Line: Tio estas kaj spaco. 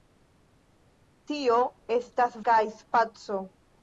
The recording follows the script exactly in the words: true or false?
true